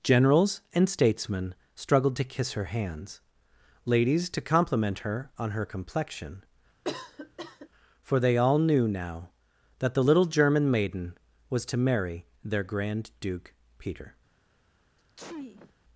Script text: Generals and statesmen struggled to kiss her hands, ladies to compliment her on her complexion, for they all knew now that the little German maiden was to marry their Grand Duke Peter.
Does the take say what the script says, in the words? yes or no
yes